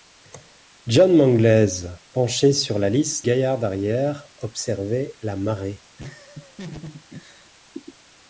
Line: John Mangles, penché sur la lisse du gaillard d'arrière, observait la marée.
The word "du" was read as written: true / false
false